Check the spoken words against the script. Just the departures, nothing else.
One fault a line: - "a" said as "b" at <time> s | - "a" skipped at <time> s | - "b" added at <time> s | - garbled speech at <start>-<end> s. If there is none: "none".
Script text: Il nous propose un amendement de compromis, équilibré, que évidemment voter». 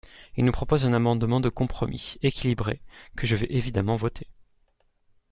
- "je vais" added at 3.3 s